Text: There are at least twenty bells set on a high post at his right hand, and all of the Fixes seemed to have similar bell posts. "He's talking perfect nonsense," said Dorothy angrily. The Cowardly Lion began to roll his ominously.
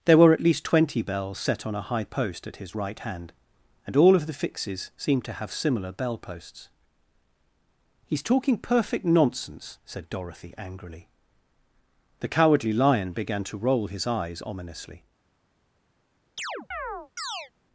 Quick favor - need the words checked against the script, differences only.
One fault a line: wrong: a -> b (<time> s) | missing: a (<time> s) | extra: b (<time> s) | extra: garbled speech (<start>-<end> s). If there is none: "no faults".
wrong: are -> were (0.2 s)
extra: eyes (14.1 s)